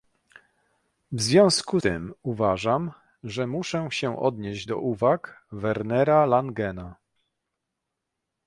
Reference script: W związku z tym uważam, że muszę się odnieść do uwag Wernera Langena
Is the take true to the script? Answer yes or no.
no